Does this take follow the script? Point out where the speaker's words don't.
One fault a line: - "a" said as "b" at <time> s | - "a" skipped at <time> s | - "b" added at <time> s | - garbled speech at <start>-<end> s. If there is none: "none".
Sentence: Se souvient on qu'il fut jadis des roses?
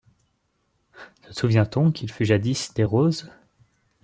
none